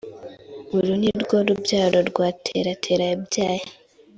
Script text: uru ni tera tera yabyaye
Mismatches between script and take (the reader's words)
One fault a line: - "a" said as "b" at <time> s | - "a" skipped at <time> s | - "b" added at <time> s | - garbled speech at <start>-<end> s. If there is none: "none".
- "rwo rubyaro rwa" added at 1.2 s